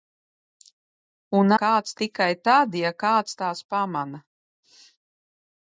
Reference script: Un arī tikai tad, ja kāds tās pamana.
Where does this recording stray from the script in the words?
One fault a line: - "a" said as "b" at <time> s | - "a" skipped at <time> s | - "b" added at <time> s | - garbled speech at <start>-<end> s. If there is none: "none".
- "arī" said as "kāds" at 1.6 s